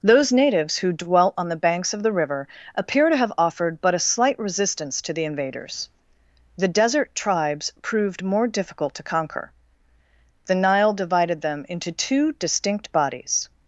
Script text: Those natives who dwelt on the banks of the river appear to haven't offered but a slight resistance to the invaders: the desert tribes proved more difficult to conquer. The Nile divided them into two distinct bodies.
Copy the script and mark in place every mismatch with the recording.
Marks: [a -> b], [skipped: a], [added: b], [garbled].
Those natives who dwelt on the banks of the river appear to [haven't -> have] offered but a slight resistance to the invaders: the desert tribes proved more difficult to conquer. The Nile divided them into two distinct bodies.